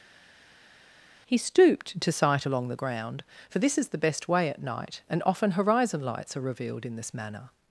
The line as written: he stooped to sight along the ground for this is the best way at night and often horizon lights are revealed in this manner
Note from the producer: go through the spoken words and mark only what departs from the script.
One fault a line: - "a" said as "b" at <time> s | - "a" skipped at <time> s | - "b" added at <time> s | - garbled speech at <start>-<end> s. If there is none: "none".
none